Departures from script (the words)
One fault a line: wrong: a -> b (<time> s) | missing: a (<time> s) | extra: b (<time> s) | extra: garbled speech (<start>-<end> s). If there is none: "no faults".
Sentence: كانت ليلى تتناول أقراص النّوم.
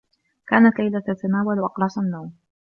no faults